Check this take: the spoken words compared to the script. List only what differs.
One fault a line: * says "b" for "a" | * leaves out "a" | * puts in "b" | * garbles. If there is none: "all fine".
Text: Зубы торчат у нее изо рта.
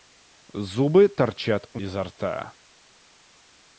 * leaves out "нее"